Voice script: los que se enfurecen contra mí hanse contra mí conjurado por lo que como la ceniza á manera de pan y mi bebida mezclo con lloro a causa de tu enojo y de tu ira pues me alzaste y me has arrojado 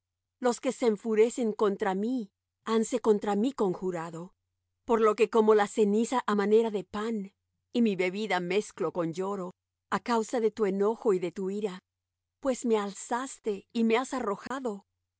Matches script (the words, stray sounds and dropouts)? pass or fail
fail